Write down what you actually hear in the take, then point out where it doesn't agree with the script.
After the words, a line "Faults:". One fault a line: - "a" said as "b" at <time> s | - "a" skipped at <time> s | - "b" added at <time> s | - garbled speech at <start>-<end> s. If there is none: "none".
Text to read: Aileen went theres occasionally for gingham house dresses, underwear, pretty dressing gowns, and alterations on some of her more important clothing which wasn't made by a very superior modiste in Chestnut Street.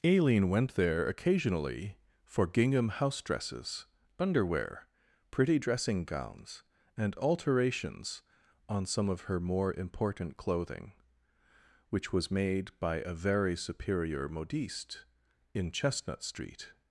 Aileen went there occasionally for gingham house dresses, underwear, pretty dressing gowns, and alterations on some of her more important clothing which was made by a very superior modiste in Chestnut Street.
Faults:
- "theres" said as "there" at 0.8 s
- "wasn't" said as "was" at 12.1 s